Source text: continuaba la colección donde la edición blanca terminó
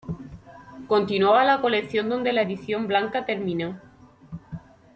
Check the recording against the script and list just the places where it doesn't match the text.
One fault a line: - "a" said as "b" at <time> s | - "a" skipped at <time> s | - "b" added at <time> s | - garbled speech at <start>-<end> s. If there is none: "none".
none